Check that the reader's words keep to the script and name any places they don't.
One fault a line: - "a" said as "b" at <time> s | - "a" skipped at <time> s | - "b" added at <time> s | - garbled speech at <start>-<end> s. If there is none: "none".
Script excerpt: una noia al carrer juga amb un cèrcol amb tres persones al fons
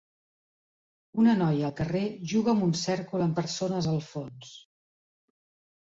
- "tres" skipped at 3.4 s